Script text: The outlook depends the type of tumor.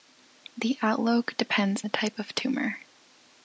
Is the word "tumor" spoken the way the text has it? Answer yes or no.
yes